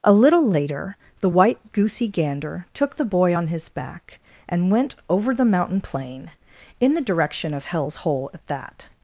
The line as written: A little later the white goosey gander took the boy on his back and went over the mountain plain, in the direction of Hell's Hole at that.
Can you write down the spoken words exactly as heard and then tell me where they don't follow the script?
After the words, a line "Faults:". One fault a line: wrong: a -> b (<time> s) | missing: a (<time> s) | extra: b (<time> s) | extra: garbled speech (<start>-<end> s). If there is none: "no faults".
A little later the white goosey gander took the boy on his back and went over the mountain plain, in the direction of Hell's Hole at that.
Faults:
no faults